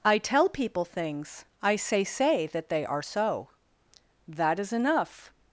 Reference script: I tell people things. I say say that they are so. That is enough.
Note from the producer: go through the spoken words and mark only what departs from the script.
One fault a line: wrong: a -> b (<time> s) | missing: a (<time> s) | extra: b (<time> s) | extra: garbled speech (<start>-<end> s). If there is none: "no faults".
no faults